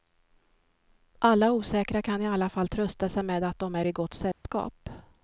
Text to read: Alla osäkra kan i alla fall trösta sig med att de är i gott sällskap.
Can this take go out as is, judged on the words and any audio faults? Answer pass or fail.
fail